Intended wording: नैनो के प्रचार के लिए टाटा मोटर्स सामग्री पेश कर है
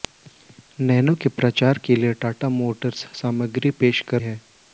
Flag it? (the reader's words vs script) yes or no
no